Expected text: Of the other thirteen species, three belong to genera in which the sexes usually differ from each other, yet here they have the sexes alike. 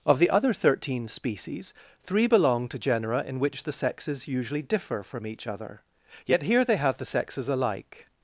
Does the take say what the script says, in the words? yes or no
yes